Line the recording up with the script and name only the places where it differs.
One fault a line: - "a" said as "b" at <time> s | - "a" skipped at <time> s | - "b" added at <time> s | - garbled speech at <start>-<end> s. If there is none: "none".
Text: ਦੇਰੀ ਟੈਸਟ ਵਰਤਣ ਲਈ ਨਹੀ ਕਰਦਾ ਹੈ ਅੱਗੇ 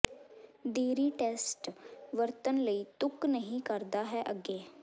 - "ਤੁਕ" added at 3.0 s